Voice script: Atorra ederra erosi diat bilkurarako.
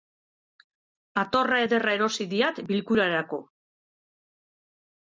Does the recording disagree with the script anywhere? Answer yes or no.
no